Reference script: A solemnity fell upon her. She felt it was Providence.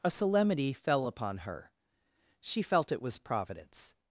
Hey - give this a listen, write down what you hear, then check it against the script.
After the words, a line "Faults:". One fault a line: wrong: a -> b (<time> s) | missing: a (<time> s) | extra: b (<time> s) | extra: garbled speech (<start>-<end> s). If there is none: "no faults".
A solemnity fell upon her. She felt it was Providence.
Faults:
no faults